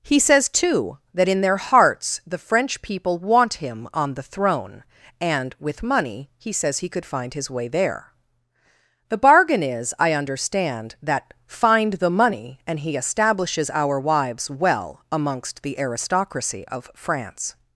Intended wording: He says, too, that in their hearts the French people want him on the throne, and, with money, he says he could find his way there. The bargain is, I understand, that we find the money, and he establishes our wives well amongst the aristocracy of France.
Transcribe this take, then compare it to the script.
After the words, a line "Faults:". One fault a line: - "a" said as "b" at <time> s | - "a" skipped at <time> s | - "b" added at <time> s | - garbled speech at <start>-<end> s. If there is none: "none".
He says, too, that in their hearts the French people want him on the throne, and, with money, he says he could find his way there. The bargain is, I understand, that find the money, and he establishes our wives well amongst the aristocracy of France.
Faults:
- "we" skipped at 11.3 s